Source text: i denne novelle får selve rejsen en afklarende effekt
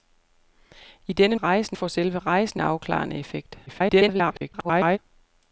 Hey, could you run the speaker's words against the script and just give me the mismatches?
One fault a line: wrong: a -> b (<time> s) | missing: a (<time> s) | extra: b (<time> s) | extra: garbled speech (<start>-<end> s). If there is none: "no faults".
wrong: novelle -> rejsen (1.4 s)
missing: en (2.6 s)
extra: garbled speech (3.7-5.0 s)